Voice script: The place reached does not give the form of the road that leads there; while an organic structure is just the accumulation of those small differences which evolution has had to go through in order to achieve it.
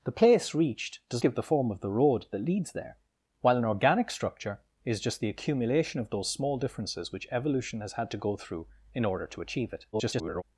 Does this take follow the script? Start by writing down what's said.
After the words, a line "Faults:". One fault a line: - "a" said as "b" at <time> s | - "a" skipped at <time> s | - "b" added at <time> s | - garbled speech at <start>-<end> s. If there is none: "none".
The place reached does give the form of the road that leads there; while an organic structure is just the accumulation of those small differences which evolution has had to go through in order to achieve it. [garbled]
Faults:
- "not" skipped at 1.2 s
- garbled speech at 9.9-10.4 s